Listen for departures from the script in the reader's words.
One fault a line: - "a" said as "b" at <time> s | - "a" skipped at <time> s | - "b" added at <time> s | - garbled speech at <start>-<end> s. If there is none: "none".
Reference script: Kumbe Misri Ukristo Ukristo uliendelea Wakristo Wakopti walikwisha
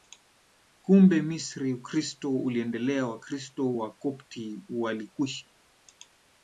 - "Ukristo" skipped at 2.4 s